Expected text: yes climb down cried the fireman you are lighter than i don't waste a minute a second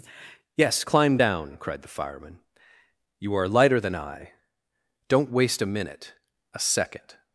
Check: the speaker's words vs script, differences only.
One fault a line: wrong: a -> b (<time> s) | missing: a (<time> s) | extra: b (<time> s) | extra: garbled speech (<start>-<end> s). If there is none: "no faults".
no faults